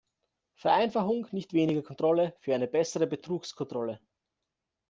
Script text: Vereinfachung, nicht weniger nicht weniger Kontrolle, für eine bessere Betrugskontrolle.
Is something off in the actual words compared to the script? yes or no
yes